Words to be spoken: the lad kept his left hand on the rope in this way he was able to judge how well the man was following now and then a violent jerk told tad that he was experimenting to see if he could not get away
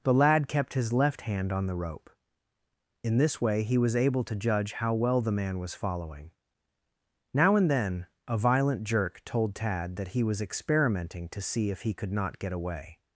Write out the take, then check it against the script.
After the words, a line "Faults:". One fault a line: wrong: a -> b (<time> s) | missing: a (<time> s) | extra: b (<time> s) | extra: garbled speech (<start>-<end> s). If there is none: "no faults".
the lad kept his left hand on the rope in this way he was able to judge how well the man was following now and then a violent jerk told tad that he was experimenting to see if he could not get away
Faults:
no faults